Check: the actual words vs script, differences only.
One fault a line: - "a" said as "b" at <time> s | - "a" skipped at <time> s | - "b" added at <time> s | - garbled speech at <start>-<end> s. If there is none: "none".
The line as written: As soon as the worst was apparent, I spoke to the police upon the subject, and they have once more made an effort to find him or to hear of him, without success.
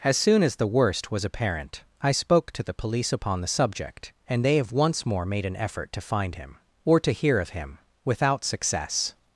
none